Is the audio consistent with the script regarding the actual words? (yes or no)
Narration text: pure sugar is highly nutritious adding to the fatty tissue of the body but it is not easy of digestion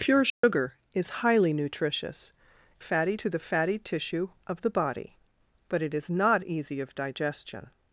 no